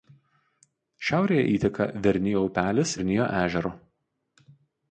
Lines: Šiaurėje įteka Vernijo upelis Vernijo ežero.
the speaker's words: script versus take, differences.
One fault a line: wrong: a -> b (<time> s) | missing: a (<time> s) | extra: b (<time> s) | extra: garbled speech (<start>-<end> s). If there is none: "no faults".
no faults